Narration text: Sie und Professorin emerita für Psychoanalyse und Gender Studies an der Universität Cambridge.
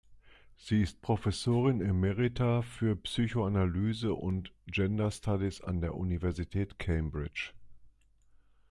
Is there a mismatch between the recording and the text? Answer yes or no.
yes